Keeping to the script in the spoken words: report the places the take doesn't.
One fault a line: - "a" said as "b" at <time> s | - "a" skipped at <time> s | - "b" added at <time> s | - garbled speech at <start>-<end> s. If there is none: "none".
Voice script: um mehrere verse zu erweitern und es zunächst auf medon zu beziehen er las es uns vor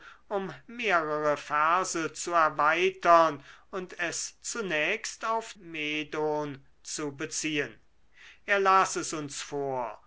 none